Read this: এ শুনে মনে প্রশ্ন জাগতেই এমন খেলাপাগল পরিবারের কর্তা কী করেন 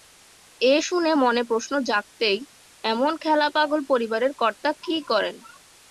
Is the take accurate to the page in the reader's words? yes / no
yes